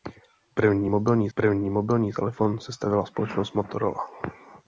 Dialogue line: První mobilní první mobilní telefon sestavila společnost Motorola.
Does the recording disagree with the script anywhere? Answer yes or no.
no